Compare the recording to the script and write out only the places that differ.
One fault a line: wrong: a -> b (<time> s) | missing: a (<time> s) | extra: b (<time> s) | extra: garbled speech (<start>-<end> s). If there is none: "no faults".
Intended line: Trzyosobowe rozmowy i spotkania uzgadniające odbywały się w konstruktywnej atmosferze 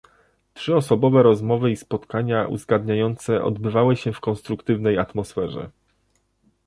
no faults